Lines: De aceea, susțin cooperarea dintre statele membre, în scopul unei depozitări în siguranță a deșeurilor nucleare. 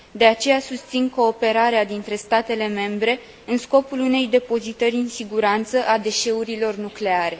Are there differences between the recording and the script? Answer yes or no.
no